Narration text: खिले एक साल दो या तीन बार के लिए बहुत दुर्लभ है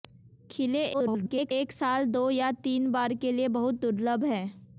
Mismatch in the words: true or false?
true